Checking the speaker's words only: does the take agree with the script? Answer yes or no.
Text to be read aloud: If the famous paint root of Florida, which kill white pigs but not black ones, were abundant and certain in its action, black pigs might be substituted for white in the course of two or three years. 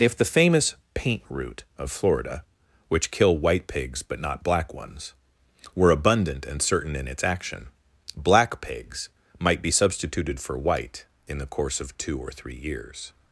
yes